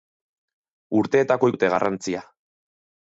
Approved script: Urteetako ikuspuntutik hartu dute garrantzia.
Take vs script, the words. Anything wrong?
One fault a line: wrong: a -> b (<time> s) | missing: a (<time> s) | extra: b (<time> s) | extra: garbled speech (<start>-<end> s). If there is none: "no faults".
missing: ikuspuntutik hartu (1.5 s)